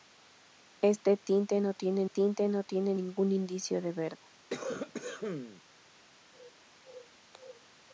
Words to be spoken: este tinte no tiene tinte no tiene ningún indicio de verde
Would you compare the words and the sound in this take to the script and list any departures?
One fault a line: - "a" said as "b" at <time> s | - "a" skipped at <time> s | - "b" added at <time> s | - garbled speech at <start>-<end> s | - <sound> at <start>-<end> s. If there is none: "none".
- cough at 4.5-5.6 s